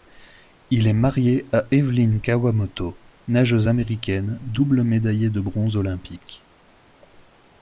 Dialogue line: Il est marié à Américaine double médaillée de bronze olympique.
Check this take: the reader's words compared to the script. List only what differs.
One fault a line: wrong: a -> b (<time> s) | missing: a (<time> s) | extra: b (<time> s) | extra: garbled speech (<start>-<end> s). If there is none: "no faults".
extra: Evelyn Kawamoto nageuse (1.7 s)